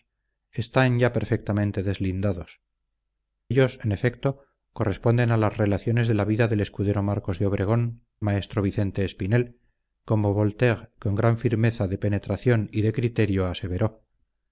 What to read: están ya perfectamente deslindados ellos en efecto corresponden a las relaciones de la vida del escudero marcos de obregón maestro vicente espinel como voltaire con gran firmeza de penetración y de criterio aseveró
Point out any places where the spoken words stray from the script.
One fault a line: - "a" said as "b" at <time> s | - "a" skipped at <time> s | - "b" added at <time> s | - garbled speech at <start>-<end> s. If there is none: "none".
none